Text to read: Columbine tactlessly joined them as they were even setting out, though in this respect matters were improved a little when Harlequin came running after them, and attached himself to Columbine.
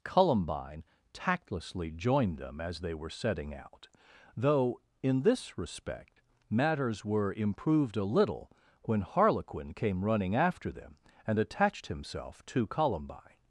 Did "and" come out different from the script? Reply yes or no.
no